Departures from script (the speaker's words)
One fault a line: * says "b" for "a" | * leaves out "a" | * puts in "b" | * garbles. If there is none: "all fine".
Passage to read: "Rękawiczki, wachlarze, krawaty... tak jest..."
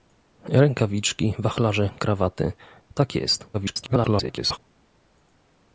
* garbles